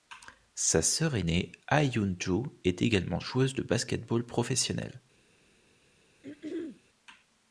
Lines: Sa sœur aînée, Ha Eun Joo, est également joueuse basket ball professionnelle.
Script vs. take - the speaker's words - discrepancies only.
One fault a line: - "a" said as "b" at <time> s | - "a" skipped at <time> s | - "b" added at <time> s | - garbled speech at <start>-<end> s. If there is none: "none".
- "de" added at 3.5 s